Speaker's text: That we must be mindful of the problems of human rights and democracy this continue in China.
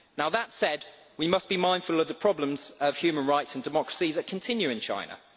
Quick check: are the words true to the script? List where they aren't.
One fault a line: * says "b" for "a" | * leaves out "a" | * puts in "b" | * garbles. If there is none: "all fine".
* puts in "said"
* says "that" for "this"